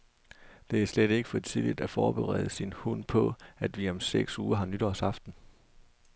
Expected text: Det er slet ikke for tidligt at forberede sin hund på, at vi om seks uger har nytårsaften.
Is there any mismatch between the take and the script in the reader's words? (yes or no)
no